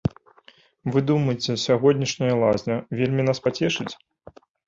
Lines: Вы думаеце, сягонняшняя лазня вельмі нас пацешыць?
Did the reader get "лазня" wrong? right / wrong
right